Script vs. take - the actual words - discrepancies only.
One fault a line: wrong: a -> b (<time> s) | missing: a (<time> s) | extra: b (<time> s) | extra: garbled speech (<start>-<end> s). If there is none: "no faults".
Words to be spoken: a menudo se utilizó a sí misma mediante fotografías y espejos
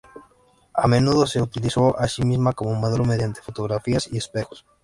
extra: como modelo (2.5 s)